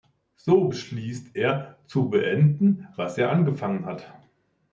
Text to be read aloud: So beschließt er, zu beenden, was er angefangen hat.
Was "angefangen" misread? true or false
false